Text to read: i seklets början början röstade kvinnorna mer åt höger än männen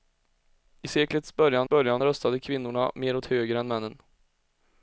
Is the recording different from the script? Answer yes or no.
no